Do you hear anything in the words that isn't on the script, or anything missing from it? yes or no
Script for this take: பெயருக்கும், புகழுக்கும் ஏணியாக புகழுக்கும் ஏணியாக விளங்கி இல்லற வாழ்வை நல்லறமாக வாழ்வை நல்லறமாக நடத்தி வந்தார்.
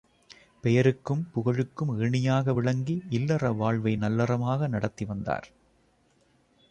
yes